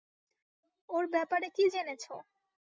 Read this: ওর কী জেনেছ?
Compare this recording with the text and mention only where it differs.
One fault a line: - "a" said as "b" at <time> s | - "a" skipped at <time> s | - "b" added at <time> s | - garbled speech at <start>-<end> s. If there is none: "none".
- "ব্যাপারে" added at 1.1 s